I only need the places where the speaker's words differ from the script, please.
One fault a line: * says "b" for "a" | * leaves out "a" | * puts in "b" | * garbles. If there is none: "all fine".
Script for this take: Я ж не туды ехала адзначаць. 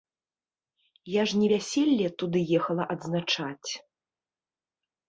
* puts in "вяселле"